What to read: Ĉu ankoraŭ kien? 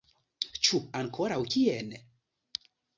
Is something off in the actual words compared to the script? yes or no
no